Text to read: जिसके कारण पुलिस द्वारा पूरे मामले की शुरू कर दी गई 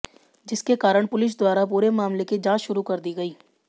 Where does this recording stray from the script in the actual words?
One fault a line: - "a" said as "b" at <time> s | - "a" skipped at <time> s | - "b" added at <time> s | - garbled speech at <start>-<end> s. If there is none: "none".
- "जांच" added at 2.4 s